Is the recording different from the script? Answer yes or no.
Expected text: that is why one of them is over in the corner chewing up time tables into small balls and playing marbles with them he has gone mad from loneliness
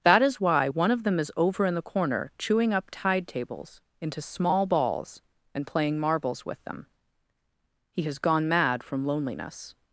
yes